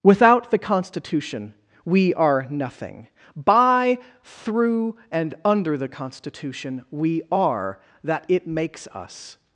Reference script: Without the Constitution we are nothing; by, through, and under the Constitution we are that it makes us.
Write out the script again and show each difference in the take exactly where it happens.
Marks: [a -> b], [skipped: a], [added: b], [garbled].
Without the Constitution we are nothing; by, through, and under the Constitution we are that it makes us.